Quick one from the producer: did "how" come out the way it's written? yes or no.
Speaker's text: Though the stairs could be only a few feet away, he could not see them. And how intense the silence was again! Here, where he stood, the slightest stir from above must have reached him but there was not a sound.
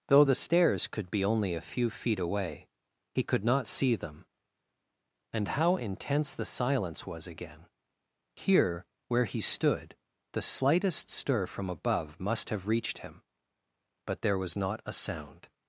yes